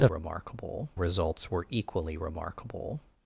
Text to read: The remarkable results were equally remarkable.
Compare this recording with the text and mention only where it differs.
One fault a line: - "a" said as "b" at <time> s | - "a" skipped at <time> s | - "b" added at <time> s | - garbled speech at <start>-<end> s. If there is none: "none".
none